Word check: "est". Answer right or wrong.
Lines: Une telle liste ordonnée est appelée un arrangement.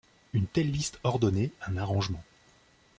wrong